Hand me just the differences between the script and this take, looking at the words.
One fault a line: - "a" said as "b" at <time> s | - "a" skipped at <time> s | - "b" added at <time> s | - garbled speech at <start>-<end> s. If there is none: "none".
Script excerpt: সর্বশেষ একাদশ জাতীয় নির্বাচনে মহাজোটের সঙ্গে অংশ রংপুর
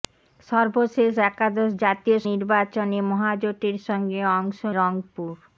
none